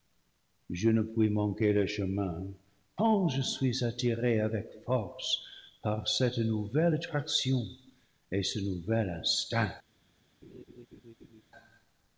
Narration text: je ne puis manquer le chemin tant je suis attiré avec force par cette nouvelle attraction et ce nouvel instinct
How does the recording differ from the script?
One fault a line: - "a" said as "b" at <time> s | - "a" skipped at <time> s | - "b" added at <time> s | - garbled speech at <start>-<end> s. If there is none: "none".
none